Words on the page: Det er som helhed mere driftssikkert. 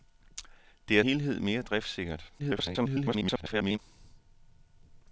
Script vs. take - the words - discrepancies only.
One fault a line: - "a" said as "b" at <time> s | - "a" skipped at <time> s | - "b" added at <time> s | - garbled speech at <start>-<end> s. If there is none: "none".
- "som" skipped at 1.0 s
- garbled speech at 2.4-3.8 s